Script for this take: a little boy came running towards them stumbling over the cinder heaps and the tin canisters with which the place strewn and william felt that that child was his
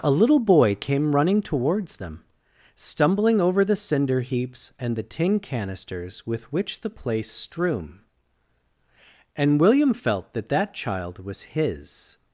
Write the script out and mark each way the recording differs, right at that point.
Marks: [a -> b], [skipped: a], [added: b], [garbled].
a little boy came running towards them stumbling over the cinder heaps and the tin canisters with which the place strewn and william felt that that child was his